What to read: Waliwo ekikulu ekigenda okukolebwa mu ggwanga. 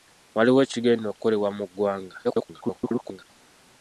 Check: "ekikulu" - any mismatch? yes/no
yes